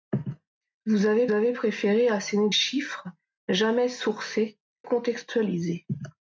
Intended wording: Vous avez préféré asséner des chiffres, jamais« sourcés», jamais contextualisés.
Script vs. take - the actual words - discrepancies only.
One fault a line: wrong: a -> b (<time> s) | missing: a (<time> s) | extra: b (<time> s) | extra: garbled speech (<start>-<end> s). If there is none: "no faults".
extra: avez (1.3 s)
missing: des (2.5 s)
missing: jamais (4.6 s)